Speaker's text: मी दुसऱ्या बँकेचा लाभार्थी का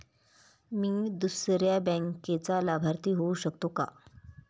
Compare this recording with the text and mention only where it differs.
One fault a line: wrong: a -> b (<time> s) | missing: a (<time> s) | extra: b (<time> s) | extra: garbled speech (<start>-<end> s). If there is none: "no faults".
extra: होऊ शकतो (3.1 s)